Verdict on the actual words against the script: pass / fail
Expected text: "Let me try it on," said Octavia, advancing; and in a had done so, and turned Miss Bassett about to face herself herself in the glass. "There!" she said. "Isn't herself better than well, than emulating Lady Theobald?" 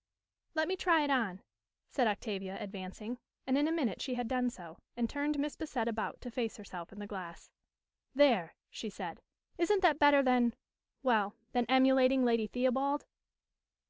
fail